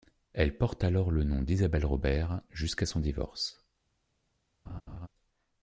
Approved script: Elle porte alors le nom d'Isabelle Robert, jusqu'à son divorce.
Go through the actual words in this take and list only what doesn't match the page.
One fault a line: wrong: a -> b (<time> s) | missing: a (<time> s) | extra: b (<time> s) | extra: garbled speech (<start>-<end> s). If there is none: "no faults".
no faults